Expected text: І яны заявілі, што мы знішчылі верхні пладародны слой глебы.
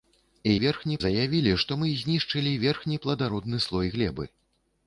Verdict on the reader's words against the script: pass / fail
fail